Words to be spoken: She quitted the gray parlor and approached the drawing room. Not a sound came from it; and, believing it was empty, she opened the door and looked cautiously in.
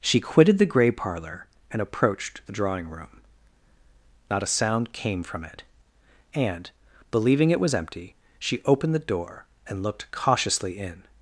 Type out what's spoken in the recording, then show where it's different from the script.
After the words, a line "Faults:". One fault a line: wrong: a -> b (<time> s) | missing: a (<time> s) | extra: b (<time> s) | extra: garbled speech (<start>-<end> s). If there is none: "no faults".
She quitted the gray parlor and approached the drawing room. Not a sound came from it; and, believing it was empty, she opened the door and looked cautiously in.
Faults:
no faults